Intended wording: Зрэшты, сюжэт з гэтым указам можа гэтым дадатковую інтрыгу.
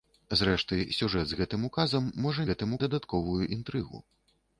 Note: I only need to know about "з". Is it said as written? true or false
true